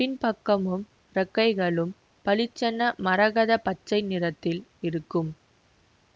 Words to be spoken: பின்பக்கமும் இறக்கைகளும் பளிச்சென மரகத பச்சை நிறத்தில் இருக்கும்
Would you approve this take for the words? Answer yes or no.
yes